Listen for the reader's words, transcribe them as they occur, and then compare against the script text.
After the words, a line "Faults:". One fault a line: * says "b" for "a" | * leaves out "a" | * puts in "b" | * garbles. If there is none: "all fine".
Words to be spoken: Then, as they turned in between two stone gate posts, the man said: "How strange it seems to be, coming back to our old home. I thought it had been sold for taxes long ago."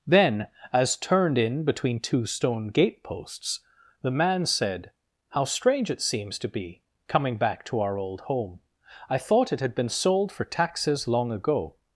Then, as turned in between two stone gate posts, the man said: "How strange it seems to be, coming back to our old home. I thought it had been sold for taxes long ago."
Faults:
* leaves out "they"